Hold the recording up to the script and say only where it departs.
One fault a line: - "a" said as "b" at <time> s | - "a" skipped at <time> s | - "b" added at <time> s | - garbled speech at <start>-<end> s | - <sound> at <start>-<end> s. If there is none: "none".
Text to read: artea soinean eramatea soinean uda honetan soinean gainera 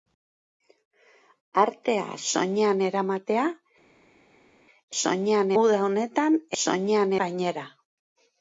none